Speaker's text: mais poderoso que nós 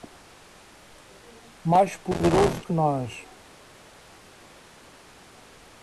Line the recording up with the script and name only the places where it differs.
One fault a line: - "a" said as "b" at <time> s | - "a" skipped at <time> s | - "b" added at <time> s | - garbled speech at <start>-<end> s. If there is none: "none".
none